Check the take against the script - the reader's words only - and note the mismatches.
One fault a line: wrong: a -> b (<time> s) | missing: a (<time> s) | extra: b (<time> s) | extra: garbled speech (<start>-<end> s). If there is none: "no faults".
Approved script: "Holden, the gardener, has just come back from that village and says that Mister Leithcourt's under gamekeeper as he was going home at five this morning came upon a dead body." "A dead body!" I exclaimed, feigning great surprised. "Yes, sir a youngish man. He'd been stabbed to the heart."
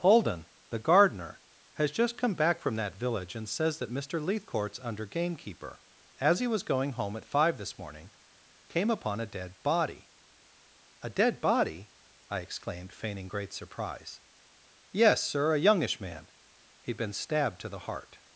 wrong: surprised -> surprise (13.5 s)